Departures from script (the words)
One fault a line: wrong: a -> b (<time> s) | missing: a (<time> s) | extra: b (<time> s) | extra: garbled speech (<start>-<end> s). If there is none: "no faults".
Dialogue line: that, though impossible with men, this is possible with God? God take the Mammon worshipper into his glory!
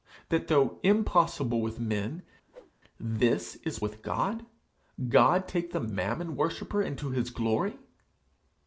missing: possible (3.8 s)